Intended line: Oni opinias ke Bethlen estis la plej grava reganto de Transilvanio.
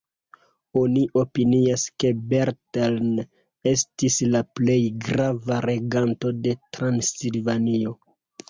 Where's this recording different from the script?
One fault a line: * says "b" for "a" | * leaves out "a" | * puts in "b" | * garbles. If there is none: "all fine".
all fine